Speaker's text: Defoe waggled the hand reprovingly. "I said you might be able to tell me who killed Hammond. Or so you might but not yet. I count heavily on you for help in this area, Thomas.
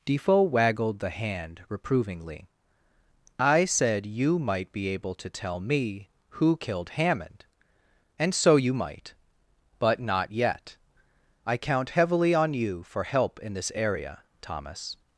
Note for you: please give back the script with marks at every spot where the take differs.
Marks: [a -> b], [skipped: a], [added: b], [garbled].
Defoe waggled the hand reprovingly. "I said you might be able to tell me who killed Hammond. [Or -> And] so you might but not yet. I count heavily on you for help in this area, Thomas.